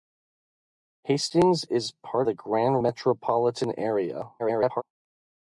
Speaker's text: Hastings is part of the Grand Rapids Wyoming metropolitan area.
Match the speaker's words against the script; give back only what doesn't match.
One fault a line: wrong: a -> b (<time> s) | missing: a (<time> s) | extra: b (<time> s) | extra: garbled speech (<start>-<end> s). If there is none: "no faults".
missing: of (2.3 s)
missing: Rapids Wyoming (2.8 s)
extra: garbled speech (4.4-4.8 s)